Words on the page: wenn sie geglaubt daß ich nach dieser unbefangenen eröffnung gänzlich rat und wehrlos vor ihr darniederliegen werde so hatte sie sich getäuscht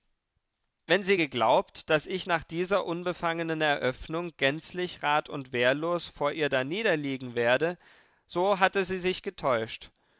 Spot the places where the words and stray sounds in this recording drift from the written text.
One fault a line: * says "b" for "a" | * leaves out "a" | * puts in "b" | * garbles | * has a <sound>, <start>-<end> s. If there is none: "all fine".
all fine